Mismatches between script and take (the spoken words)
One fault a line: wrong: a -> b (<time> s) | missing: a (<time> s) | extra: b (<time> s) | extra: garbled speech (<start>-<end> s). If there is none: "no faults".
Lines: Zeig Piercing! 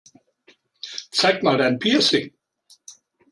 extra: mal dein (1.4 s)